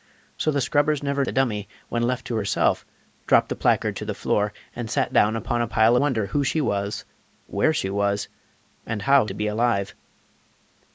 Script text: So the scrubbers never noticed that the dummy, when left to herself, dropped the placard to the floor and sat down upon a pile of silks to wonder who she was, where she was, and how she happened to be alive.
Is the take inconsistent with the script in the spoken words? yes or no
yes